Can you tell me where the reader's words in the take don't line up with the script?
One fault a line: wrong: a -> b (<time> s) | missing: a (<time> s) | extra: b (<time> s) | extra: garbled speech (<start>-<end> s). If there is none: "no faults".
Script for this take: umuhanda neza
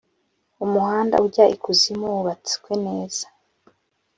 extra: ujya ikuzimu wubatswe (1.3 s)